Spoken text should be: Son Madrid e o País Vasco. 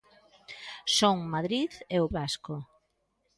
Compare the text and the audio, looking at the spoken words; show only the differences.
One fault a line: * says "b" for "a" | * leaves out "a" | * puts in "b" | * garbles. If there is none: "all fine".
* leaves out "País"